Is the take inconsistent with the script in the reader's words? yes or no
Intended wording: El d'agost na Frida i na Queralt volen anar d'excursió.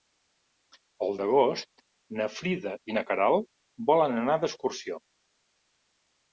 no